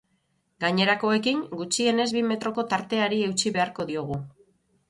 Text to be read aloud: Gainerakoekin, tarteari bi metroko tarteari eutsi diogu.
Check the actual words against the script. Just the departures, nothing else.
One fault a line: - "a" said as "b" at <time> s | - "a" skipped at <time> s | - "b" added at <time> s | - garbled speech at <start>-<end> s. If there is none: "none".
- "tarteari" said as "gutxienez" at 1.6 s
- "beharko" added at 3.6 s